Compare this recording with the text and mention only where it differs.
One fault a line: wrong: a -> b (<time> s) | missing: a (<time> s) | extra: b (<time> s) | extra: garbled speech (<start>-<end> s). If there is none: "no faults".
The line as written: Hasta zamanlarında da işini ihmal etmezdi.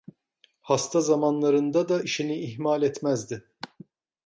no faults